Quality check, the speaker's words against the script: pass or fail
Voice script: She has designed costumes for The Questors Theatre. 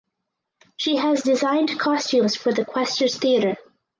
pass